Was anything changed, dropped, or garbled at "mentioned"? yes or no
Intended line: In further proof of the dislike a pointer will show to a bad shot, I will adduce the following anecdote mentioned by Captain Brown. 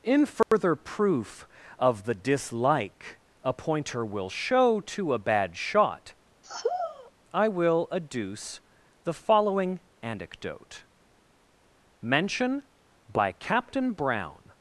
yes